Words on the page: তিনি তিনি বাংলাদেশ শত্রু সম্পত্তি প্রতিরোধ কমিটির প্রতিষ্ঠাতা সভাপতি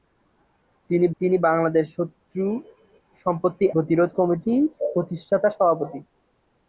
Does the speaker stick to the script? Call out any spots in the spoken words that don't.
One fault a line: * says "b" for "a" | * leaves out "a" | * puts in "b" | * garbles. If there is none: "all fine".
all fine